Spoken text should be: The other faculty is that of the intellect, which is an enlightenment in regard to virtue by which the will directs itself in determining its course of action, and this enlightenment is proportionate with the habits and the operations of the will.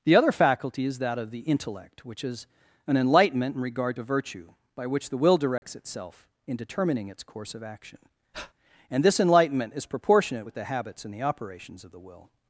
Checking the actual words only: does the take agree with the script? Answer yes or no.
yes